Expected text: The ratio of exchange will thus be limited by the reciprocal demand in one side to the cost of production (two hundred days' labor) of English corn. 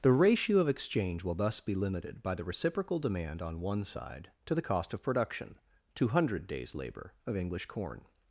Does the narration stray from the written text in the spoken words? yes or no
yes